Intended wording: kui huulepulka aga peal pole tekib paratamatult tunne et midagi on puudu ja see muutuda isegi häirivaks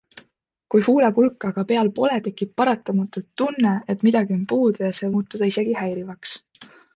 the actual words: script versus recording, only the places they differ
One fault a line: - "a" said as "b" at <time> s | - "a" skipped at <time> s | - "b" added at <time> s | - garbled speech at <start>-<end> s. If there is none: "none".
none